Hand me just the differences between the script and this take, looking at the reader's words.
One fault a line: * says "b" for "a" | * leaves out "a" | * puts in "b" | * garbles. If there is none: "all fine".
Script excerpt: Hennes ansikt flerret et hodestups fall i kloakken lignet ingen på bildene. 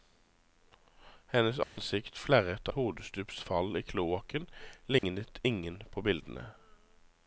all fine